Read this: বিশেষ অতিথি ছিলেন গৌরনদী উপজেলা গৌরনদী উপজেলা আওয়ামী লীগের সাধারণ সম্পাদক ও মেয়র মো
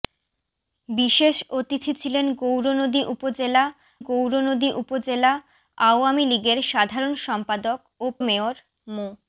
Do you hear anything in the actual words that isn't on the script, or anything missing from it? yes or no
no